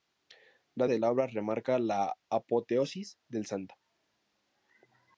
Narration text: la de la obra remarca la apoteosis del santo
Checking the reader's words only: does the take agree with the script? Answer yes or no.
yes